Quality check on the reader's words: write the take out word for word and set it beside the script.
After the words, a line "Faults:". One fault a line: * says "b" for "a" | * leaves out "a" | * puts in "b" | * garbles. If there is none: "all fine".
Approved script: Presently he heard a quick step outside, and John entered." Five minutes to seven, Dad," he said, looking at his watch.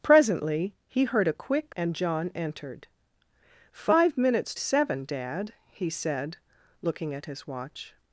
Presently he heard a quick and John entered." Five minutes seven, Dad," he said, looking at his watch.
Faults:
* leaves out "step outside"
* leaves out "to"